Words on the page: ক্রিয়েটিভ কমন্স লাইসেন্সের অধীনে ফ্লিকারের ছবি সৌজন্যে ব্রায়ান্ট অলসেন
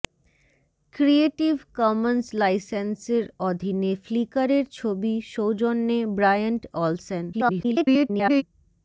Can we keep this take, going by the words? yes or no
no